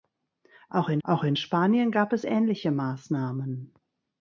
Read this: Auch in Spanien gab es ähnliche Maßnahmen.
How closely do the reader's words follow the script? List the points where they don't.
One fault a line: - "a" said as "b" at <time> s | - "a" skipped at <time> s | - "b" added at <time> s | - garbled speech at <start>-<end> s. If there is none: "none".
- "auch in" added at 1.0 s